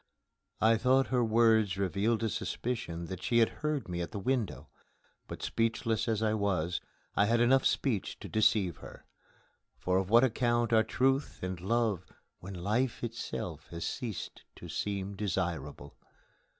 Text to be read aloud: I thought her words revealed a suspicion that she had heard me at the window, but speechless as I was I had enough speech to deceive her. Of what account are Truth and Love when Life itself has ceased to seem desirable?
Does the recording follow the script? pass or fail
fail